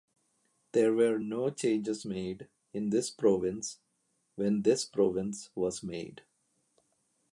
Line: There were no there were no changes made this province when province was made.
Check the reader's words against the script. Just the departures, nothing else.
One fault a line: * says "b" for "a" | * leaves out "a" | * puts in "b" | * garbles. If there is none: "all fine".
* leaves out "there were no"
* puts in "in"
* puts in "this"